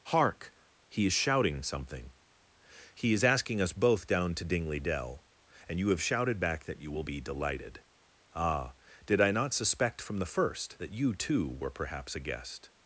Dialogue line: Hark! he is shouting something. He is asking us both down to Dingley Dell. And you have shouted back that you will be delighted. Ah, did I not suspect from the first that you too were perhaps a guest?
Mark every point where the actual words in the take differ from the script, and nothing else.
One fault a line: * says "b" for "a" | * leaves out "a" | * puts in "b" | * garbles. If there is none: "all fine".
all fine